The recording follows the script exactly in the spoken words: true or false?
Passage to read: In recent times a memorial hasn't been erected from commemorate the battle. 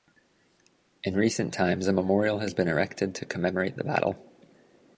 false